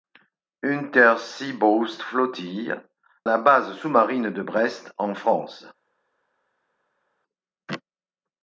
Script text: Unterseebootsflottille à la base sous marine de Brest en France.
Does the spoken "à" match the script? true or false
false